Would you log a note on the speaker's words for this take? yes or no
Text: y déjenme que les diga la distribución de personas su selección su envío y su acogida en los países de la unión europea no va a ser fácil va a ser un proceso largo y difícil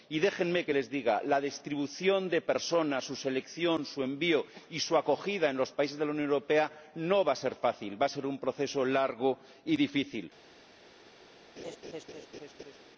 no